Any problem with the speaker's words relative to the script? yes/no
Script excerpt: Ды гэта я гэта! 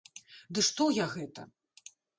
yes